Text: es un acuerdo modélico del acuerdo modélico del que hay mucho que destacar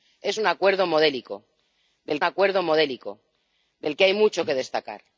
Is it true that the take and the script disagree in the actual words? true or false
false